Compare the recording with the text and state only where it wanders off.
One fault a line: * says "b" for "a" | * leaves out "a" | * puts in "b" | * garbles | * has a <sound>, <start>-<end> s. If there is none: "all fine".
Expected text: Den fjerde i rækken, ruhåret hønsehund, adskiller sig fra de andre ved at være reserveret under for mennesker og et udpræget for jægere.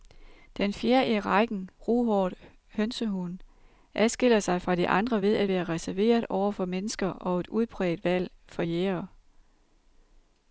* says "over" for "under"
* puts in "valg"